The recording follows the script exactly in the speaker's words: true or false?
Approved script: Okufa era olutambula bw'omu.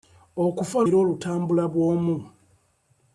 true